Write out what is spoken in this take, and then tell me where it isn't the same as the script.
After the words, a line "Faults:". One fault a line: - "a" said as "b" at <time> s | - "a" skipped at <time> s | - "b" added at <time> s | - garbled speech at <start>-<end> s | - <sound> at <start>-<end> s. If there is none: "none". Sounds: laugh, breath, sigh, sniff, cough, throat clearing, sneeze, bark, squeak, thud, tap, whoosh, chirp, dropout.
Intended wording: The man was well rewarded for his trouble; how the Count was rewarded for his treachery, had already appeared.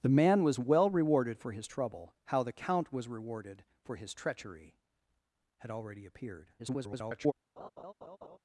The man was well rewarded for his trouble; how the Count was rewarded for his treachery, had already appeared. [garbled]
Faults:
- garbled speech at 6.6-7.3 s
- laugh at 7.6-8.4 s